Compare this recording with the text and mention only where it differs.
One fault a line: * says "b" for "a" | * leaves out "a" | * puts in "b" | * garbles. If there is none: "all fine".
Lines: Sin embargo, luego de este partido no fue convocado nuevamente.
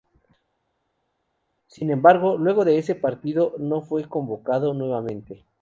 * says "ese" for "este"